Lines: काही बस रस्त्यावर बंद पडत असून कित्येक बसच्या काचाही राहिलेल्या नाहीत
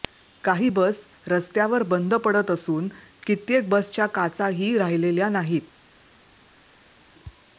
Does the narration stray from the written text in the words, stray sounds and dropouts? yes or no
no